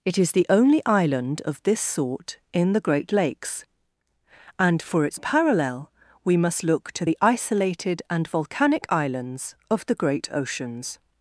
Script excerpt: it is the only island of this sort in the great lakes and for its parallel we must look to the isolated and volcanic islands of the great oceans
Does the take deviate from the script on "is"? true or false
false